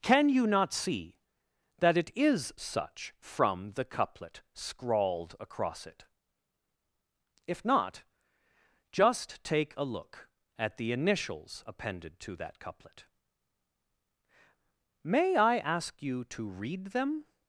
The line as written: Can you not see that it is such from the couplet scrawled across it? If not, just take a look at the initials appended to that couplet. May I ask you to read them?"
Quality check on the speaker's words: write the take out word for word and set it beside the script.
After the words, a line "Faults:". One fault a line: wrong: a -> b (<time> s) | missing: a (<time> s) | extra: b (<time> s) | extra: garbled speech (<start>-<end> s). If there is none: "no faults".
Can you not see that it is such from the couplet scrawled across it? If not, just take a look at the initials appended to that couplet. May I ask you to read them?"
Faults:
no faults